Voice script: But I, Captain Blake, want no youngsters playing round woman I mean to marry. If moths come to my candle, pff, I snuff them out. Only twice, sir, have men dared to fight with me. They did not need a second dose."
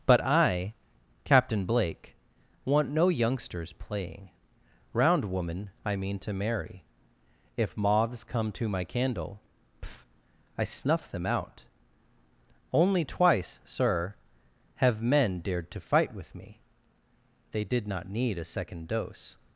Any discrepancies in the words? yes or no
no